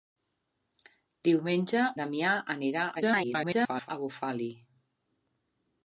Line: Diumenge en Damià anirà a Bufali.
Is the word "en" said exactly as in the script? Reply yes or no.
no